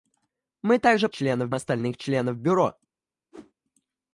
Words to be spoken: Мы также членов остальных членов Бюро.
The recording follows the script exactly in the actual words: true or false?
true